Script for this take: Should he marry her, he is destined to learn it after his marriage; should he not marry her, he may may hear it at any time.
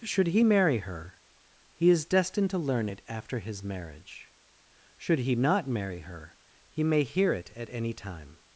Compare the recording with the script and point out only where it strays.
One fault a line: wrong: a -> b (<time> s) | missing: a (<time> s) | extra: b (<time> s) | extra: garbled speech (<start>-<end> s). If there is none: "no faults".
missing: may (7.0 s)